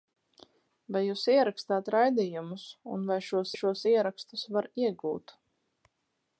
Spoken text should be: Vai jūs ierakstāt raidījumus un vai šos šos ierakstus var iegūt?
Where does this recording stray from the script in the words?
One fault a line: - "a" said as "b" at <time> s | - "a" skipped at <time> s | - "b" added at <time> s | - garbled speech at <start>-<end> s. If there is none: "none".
none